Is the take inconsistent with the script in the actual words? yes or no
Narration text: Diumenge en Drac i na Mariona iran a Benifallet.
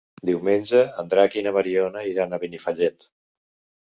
no